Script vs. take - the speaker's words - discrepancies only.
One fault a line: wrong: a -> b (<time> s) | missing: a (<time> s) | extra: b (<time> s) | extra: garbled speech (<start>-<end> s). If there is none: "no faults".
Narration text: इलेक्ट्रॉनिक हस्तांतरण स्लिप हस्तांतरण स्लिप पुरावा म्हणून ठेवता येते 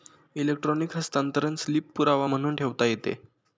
missing: हस्तांतरण स्लिप (1.9 s)